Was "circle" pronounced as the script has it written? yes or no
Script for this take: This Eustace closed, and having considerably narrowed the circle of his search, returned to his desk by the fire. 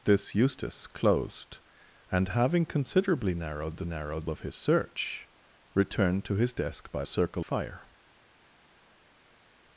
no